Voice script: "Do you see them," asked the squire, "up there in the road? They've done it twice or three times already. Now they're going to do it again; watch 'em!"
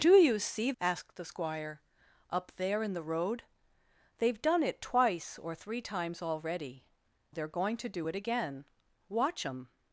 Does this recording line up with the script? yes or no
no